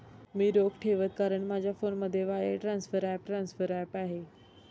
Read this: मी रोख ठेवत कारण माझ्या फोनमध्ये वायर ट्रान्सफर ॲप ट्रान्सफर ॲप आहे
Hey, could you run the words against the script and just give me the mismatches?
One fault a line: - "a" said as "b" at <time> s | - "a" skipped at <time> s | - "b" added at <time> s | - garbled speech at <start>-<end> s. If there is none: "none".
none